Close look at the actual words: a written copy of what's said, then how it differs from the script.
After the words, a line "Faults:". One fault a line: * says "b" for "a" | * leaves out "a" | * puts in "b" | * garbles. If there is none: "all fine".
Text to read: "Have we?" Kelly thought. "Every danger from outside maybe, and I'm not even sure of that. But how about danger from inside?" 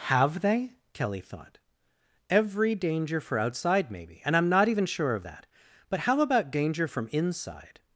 "Have they?" Kelly thought. "Every danger for outside maybe, and I'm not even sure of that. But how about danger from inside?"
Faults:
* says "they" for "we"
* says "for" for "from"